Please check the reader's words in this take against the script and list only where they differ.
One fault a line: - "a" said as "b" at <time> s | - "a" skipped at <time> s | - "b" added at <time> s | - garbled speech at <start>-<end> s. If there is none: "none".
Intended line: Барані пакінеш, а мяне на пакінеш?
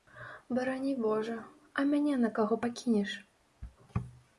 - "пакінеш" said as "божа" at 1.0 s
- "каго" added at 2.4 s